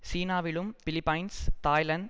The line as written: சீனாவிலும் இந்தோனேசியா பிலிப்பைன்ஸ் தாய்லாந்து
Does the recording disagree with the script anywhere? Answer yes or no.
yes